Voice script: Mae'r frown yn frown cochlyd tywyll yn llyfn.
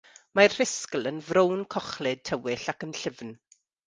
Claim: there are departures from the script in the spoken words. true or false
true